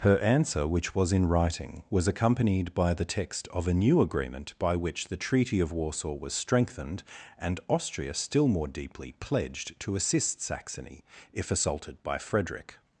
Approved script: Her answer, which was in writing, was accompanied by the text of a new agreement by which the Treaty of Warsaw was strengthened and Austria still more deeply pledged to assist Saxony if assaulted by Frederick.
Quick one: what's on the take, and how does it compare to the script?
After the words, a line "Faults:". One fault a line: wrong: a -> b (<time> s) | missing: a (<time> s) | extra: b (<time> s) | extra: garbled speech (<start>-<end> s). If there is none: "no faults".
Her answer, which was in writing, was accompanied by the text of a new agreement by which the Treaty of Warsaw was strengthened and Austria still more deeply pledged to assist Saxony if assaulted by Frederick.
Faults:
no faults